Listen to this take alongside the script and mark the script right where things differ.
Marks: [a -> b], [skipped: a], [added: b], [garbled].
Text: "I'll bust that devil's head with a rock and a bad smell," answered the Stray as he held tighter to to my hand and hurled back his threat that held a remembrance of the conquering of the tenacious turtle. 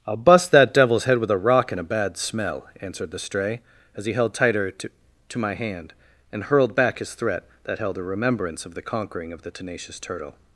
"I'll bust that devil's head with a rock and a bad smell," answered the Stray as he held tighter to to my hand and hurled back his threat that held a remembrance of the conquering of the tenacious turtle.